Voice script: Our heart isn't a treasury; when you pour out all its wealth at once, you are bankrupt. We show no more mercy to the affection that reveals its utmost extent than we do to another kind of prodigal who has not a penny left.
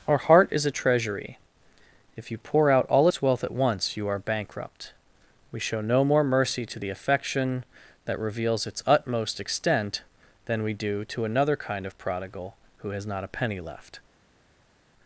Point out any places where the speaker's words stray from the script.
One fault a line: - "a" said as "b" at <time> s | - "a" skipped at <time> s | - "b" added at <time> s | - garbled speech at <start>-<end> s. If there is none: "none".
- "isn't" said as "is" at 0.5 s
- "when" said as "if" at 2.2 s